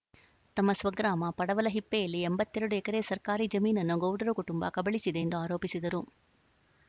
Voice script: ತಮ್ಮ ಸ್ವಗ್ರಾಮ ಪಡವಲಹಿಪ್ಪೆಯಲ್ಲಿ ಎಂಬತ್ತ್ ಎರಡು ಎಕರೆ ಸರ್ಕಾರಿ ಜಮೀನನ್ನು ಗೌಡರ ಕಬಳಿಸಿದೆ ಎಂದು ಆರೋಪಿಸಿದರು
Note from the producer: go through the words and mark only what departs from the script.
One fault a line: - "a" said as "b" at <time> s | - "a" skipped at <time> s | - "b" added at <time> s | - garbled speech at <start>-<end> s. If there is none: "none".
- "ಕುಟುಂಬ" added at 4.3 s